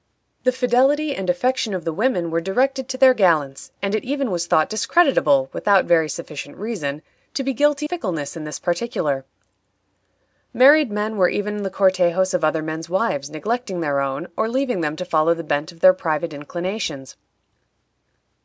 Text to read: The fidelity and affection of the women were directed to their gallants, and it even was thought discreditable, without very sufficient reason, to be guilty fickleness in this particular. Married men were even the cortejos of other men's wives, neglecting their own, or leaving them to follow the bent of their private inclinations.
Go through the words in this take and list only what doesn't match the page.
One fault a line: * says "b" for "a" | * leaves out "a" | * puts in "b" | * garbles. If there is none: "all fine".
all fine